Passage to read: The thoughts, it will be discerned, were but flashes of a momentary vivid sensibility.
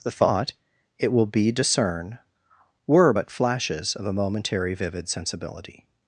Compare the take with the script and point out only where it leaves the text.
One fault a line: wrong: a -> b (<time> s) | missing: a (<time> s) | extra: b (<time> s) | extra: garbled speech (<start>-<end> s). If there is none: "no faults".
wrong: thoughts -> thought (0.1 s)
wrong: discerned -> discern (1.5 s)